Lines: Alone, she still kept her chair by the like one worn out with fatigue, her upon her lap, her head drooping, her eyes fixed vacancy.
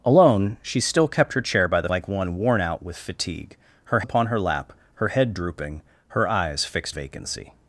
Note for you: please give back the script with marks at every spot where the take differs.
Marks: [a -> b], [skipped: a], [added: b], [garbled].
Alone, she still kept her chair by the like one worn out with fatigue, her upon her lap, her head drooping, her eyes fixed vacancy.